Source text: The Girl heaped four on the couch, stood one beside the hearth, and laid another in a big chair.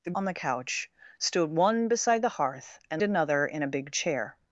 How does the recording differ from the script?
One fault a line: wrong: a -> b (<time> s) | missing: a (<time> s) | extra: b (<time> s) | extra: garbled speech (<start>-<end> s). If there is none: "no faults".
missing: Girl heaped four (0.1 s)
missing: laid (3.0 s)